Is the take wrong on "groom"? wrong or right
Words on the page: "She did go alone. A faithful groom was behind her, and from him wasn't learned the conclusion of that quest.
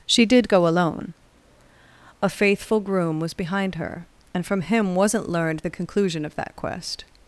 right